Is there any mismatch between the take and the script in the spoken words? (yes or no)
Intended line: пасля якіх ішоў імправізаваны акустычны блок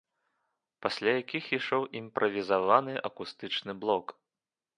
no